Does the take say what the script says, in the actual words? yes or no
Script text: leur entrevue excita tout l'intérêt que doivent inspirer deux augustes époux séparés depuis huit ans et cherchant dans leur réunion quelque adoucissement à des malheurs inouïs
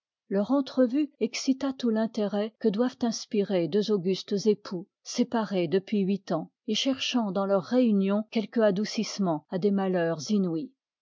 yes